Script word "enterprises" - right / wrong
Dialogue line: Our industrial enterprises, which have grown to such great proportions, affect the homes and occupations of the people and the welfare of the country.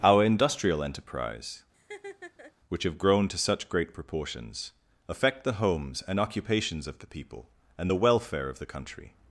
wrong